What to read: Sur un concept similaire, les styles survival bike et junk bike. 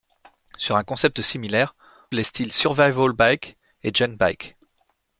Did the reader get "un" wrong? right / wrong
right